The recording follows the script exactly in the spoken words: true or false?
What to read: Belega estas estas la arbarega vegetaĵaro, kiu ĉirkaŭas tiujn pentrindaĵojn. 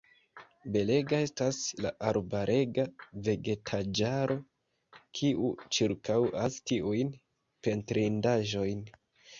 false